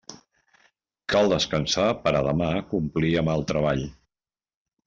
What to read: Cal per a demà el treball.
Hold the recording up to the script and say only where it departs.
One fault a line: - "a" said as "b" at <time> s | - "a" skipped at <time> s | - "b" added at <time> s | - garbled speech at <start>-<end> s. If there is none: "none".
- "descansar" added at 1.3 s
- "complir amb" added at 2.7 s